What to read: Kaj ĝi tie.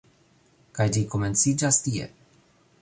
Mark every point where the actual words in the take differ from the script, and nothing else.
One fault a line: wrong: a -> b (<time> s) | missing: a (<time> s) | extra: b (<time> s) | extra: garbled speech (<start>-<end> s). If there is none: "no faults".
extra: komenciĝas (1.1 s)